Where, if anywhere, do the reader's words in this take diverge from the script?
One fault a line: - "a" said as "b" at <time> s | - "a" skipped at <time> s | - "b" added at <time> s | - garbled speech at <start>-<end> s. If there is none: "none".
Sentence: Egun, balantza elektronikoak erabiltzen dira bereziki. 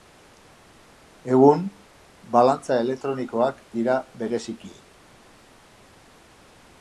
- "erabiltzen" skipped at 3.6 s